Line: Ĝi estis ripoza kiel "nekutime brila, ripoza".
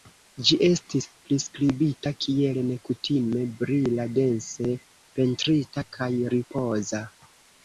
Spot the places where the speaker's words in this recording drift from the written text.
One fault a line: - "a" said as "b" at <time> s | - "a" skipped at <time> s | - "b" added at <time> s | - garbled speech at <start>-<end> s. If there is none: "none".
- "ripoza" said as "priskribita" at 1.3 s
- "dense pentrita kaj" added at 4.2 s